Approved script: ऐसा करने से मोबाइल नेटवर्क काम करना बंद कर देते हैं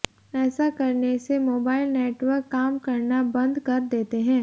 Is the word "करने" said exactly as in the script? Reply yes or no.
yes